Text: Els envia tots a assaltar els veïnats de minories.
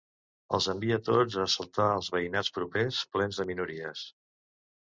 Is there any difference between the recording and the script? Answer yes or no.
yes